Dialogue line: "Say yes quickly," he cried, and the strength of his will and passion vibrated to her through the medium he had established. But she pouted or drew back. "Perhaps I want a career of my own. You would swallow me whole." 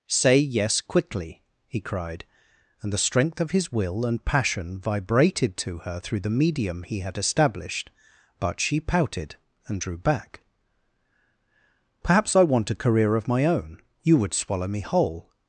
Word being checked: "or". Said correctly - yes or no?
no